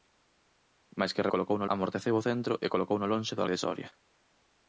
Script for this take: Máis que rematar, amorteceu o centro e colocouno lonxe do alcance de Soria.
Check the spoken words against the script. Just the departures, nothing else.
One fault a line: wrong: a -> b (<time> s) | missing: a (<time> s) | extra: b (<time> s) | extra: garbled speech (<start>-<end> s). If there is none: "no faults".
wrong: rematar -> colocouno (1.3 s)
missing: alcance (3.4 s)